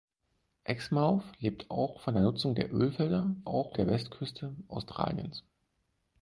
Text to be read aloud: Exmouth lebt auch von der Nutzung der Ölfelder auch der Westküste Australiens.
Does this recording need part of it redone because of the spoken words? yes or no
no